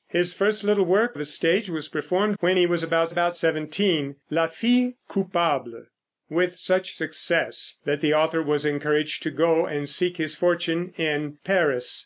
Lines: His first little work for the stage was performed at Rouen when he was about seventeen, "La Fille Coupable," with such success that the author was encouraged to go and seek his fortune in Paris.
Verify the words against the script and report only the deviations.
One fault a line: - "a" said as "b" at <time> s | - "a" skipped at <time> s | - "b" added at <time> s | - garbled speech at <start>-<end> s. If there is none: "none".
- "for" skipped at 1.1 s
- "at Rouen" skipped at 2.4 s
- "about" added at 3.1 s